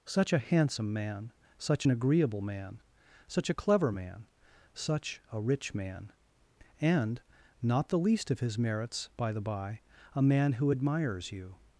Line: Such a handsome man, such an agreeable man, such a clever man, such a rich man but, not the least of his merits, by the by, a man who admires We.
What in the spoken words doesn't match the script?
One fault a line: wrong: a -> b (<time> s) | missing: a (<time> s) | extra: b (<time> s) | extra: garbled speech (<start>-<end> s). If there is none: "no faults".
wrong: but -> and (6.8 s)
wrong: We -> You (11.3 s)